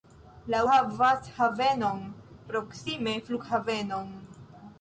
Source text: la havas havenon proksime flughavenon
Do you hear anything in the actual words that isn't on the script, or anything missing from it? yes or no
no